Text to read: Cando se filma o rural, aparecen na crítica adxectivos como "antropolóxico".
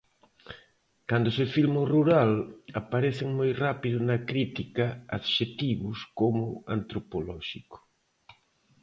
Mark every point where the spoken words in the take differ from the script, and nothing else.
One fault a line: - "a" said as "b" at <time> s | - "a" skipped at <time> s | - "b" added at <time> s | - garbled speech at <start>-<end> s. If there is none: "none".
- "moi rápido" added at 3.4 s